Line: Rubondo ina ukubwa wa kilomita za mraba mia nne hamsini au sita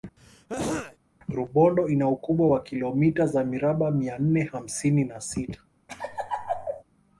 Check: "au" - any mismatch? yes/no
yes